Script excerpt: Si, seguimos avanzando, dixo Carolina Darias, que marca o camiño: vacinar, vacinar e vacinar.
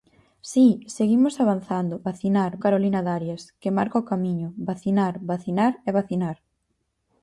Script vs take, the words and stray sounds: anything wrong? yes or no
yes